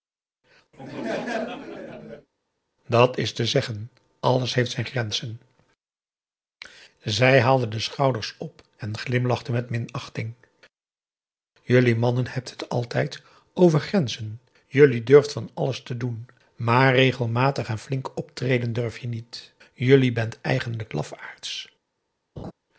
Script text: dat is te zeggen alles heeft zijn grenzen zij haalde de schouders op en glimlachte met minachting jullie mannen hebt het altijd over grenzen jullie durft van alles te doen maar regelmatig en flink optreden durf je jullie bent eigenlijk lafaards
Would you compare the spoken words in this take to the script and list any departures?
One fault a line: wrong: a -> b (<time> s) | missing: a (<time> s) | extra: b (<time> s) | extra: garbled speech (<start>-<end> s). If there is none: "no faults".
extra: niet (19.1 s)